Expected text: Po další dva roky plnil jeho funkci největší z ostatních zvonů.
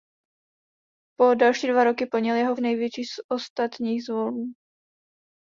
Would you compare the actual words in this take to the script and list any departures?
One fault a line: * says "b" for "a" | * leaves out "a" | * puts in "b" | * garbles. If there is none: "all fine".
* leaves out "funkci"